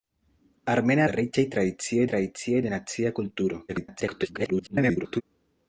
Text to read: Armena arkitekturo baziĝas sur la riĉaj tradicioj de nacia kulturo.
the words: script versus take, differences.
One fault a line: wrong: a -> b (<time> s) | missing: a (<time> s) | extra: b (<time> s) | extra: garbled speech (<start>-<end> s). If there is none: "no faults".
missing: arkitekturo baziĝas sur (1.0 s)
extra: tradicioj (2.1 s)
extra: garbled speech (3.7-5.2 s)